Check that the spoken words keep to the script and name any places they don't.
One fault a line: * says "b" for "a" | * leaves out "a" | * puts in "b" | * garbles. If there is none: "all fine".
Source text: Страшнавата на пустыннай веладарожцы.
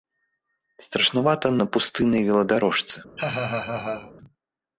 all fine